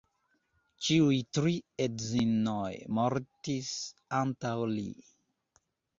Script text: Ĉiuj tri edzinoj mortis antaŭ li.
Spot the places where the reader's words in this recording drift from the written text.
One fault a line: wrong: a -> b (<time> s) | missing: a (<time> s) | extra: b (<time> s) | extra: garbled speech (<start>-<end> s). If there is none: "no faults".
no faults